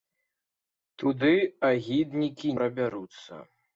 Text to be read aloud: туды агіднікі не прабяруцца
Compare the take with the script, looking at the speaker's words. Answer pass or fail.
fail